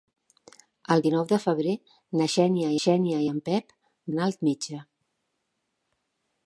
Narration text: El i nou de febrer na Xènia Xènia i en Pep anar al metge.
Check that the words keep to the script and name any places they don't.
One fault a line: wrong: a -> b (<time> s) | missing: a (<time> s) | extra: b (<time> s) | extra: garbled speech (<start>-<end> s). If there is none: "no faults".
no faults